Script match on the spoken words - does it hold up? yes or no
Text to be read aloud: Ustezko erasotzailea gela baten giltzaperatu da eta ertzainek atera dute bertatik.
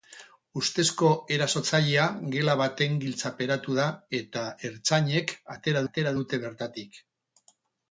no